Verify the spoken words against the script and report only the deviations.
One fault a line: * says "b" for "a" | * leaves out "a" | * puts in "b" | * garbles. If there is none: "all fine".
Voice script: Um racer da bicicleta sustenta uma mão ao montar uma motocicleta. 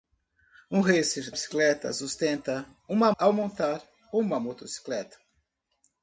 * leaves out "da"
* leaves out "mão"